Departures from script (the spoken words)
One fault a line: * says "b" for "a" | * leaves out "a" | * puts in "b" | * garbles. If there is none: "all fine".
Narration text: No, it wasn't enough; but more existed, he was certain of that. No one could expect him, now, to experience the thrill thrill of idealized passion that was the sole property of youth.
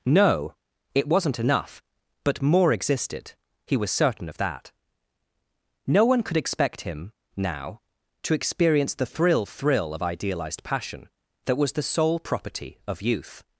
all fine